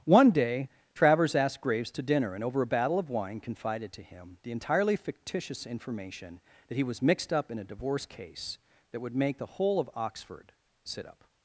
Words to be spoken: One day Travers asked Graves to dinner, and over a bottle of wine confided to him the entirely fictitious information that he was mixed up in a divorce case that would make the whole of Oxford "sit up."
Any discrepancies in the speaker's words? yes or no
yes